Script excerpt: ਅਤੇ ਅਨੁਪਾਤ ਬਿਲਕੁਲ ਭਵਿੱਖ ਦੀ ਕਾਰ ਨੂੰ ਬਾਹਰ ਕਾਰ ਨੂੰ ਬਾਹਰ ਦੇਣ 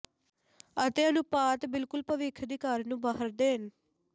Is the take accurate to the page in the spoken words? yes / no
no